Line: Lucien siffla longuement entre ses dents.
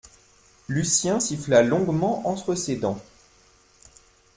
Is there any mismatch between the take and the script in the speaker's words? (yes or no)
no